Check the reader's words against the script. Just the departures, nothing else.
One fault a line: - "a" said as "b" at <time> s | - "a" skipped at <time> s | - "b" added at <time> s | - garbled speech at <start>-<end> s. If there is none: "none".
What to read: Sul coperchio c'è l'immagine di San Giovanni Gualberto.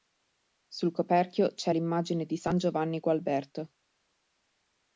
none